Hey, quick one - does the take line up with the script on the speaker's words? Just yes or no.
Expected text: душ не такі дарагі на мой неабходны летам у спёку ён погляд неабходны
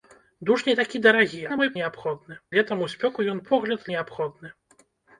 yes